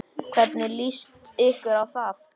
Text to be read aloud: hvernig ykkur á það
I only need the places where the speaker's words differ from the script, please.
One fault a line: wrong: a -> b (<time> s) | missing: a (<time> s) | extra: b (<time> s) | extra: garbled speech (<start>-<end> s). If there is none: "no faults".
extra: líst (0.8 s)